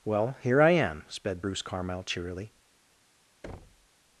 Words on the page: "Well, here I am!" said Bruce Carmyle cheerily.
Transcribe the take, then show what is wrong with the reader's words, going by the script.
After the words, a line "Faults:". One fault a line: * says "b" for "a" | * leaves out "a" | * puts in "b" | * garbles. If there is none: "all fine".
"Well, here I am!" sped Bruce Carmyle cheerily.
Faults:
* says "sped" for "said"